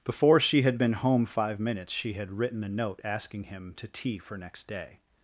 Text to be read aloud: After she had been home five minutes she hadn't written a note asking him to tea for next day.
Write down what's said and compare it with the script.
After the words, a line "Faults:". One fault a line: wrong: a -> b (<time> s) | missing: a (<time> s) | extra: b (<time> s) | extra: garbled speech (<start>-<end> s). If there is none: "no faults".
Before she had been home five minutes she had written a note asking him to tea for next day.
Faults:
wrong: After -> Before (0.0 s)
wrong: hadn't -> had (2.1 s)